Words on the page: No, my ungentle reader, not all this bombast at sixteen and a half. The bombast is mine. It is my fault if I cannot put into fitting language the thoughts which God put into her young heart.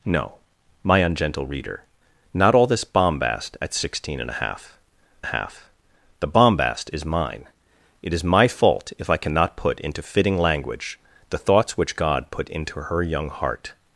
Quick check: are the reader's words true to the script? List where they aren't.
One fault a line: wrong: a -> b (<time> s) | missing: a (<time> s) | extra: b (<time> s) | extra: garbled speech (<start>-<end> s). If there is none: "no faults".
extra: half (5.2 s)